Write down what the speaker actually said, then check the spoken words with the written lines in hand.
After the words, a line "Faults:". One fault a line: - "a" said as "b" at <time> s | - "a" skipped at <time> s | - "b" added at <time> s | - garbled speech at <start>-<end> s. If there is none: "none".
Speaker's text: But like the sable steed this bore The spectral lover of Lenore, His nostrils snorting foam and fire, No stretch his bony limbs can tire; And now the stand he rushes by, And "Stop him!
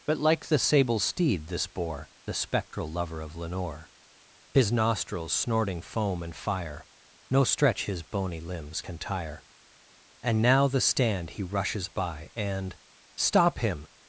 But like the sable steed this bore The spectral lover of Lenore, His nostrils snorting foam and fire, No stretch his bony limbs can tire; And now the stand he rushes by, And "Stop him!
Faults:
none